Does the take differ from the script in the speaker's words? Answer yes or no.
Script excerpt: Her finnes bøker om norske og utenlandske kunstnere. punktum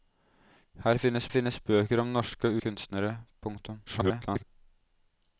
yes